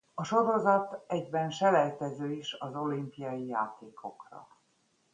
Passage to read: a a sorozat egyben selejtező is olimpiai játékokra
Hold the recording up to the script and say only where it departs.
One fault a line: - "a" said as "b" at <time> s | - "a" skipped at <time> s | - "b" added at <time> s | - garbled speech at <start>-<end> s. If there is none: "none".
- "a" skipped at 0.2 s
- "az" added at 2.5 s